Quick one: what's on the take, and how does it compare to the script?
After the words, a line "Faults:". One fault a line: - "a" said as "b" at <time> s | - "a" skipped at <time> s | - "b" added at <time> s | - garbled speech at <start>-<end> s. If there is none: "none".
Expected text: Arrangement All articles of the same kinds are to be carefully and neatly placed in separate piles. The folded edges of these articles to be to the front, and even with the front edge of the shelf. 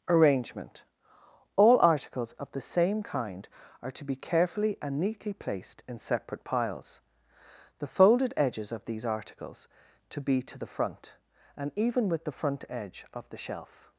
Arrangement All articles of the same kind are to be carefully and neatly placed in separate piles. The folded edges of these articles to be to the front, and even with the front edge of the shelf.
Faults:
- "kinds" said as "kind" at 3.0 s